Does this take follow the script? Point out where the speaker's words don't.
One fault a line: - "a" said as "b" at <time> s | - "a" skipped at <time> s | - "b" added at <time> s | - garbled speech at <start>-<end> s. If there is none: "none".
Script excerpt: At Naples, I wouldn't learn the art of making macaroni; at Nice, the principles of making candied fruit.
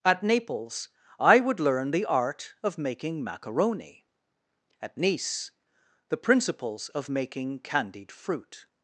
- "wouldn't" said as "would" at 1.4 s